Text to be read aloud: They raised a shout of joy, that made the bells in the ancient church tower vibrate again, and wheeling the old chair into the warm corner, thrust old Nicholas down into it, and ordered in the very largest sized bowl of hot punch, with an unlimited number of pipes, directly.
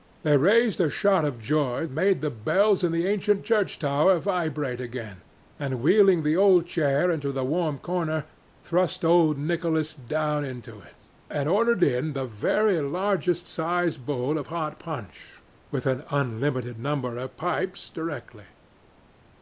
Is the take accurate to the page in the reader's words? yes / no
no